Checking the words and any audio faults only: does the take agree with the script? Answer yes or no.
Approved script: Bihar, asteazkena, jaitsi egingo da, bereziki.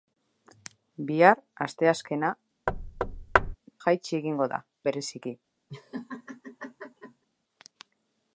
no